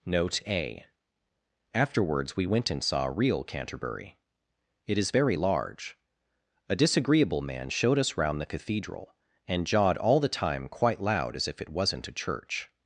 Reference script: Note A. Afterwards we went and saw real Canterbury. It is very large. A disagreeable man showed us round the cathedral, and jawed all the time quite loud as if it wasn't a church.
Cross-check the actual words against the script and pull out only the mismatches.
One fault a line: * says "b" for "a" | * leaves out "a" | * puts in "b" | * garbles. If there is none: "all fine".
all fine